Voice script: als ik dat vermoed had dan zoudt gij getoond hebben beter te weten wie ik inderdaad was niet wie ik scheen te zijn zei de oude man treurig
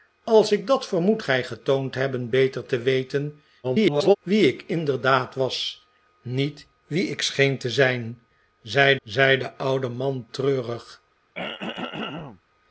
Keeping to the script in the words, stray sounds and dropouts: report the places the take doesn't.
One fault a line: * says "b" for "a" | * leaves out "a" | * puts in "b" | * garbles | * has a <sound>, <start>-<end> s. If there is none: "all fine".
* leaves out "had dan zoudt"
* garbles
* puts in "zei"
* has a throat clearing, 11.3-12.4 s